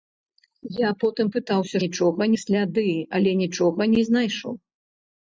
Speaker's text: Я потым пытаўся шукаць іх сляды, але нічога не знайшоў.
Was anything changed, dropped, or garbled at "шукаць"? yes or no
yes